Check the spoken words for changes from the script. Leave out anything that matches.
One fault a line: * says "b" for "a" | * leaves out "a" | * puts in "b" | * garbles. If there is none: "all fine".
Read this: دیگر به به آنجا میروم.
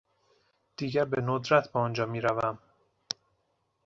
* puts in "ندرت"